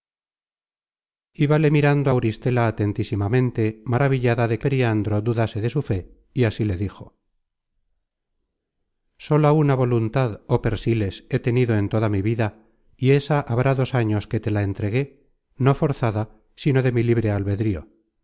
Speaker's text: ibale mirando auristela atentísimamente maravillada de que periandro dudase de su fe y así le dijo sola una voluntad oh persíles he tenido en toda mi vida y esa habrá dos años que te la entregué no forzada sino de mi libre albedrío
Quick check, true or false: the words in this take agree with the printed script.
false